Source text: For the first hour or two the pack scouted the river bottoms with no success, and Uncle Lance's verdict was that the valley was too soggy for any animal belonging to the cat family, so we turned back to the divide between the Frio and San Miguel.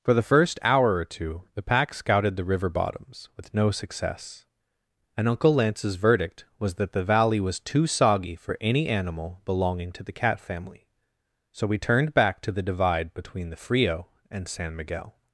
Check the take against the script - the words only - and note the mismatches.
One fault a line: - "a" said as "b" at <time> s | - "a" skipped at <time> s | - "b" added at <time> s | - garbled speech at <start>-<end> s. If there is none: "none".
none